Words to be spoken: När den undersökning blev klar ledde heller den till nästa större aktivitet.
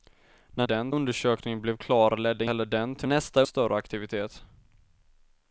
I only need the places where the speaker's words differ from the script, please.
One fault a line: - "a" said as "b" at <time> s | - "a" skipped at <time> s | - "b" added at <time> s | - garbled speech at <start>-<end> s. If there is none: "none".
none